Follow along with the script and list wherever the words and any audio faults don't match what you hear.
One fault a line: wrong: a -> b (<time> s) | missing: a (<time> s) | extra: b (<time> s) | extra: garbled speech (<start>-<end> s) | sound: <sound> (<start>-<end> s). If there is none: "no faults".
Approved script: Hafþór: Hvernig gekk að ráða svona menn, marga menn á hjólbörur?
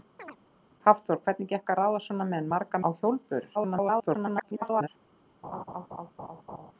sound: chirp (0.2-0.4 s)
missing: menn (2.8 s)
extra: garbled speech (3.5-4.9 s)
sound: laugh (5.4-6.7 s)